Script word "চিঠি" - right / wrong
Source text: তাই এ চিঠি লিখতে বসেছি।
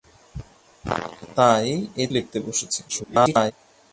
wrong